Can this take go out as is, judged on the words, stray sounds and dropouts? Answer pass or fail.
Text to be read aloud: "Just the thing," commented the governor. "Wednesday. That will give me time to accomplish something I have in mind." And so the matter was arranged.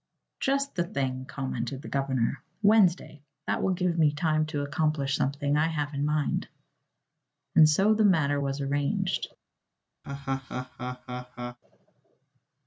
fail